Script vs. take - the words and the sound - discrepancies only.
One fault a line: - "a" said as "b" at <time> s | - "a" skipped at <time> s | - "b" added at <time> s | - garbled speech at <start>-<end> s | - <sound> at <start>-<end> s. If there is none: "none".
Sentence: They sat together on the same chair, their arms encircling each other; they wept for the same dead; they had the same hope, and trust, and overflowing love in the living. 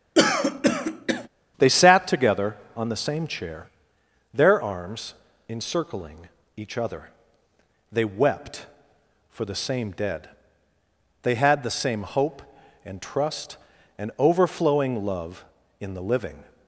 - throat clearing at 0.2-1.3 s